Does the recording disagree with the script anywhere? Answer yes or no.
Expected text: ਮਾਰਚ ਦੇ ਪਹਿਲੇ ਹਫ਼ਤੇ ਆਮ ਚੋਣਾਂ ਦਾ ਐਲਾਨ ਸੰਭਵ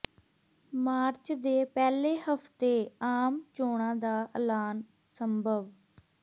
no